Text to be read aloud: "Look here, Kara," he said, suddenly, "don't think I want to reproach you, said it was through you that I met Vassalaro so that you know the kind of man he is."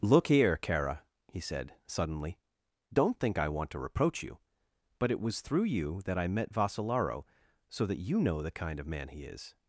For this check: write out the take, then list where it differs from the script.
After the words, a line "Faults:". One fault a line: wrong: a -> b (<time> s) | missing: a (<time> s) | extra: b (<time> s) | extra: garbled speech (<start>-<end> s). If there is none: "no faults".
"Look here, Kara," he said, suddenly, "don't think I want to reproach you, but it was through you that I met Vassalaro so that you know the kind of man he is."
Faults:
wrong: said -> but (5.0 s)